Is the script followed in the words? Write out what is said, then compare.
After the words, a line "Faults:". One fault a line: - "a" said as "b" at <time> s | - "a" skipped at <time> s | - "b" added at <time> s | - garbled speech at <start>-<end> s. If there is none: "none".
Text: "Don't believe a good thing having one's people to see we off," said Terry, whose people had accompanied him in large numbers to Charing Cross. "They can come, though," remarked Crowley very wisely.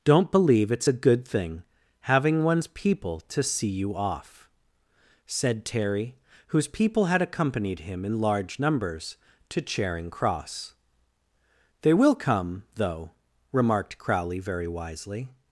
"Don't believe it's a good thing having one's people to see you off," said Terry, whose people had accompanied him in large numbers to Charing Cross. "They will come, though," remarked Crowley very wisely.
Faults:
- "it's" added at 0.7 s
- "we" said as "you" at 3.7 s
- "can" said as "will" at 11.9 s